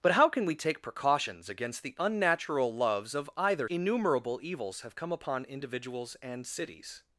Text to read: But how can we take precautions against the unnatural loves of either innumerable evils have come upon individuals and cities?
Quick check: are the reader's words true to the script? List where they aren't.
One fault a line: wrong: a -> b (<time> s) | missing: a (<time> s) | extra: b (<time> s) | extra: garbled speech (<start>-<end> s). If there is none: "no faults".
no faults